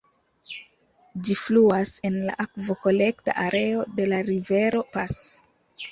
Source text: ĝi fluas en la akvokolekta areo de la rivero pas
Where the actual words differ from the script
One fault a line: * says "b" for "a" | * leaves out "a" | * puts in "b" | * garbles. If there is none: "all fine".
all fine